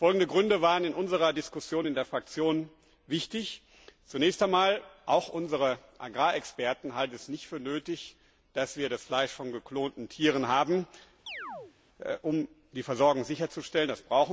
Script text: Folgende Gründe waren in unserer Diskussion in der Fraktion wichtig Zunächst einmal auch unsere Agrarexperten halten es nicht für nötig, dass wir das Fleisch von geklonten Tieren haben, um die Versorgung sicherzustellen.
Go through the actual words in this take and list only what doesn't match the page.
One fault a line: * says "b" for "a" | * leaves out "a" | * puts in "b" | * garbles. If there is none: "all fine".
all fine